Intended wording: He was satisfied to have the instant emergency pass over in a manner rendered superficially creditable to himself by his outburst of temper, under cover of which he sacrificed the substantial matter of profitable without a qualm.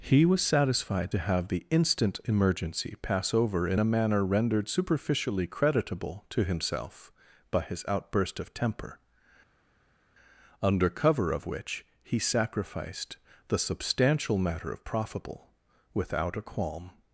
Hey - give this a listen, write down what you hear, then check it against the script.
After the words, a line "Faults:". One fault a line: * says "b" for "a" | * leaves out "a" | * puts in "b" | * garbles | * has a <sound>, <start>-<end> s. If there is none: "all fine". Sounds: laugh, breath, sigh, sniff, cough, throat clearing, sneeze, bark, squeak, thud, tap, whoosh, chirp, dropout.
He was satisfied to have the instant emergency pass over in a manner rendered superficially creditable to himself by his outburst of temper, under cover of which he sacrificed the substantial matter of profitable without a qualm.
Faults:
all fine